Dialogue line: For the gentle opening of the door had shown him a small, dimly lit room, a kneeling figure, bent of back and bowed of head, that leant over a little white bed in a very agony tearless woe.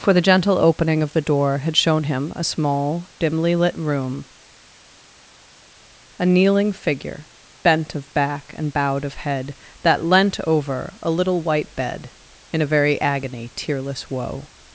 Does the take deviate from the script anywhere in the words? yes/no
no